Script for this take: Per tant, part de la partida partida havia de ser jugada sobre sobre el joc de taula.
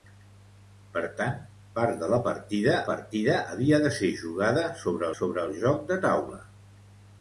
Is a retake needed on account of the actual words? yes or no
no